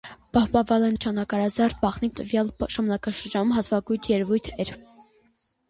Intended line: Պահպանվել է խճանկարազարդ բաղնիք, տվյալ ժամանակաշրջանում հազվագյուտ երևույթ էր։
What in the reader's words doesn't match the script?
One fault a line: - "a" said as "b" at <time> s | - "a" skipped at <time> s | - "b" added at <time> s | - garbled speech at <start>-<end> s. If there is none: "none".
none